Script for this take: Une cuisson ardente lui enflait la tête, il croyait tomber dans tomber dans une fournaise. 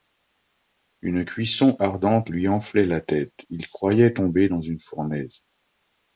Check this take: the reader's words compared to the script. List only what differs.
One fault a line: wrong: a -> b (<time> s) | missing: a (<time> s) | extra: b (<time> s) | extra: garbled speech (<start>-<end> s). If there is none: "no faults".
missing: tomber dans (4.6 s)